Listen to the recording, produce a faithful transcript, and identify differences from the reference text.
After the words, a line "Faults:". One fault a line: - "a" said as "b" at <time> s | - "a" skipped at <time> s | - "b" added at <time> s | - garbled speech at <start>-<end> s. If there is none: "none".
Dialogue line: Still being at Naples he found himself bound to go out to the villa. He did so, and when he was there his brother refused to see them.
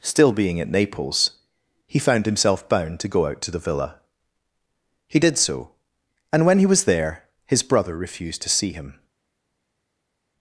Still being at Naples he found himself bound to go out to the villa. He did so, and when he was there his brother refused to see him.
Faults:
- "them" said as "him" at 8.7 s